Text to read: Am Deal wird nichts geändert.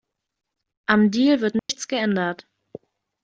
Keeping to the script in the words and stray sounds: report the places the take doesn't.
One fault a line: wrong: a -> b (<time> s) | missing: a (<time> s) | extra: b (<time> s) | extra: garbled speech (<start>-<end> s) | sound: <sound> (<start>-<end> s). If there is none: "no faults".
sound: dropout (1.6-1.7 s)